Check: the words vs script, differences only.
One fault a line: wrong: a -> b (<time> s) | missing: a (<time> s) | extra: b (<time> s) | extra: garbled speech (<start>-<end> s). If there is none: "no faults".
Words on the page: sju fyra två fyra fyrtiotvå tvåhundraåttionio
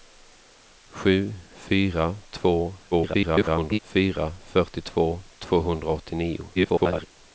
extra: garbled speech (2.9-3.8 s)
extra: garbled speech (6.5-7.1 s)